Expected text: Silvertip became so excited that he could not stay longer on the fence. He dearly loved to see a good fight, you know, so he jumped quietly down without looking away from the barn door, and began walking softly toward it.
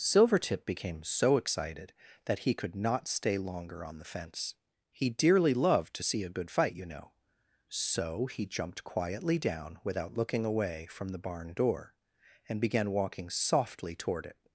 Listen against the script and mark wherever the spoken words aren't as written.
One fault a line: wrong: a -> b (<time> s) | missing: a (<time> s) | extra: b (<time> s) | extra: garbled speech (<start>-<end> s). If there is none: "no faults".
no faults